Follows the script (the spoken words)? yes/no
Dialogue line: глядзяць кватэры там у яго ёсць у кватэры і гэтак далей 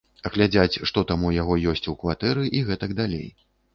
no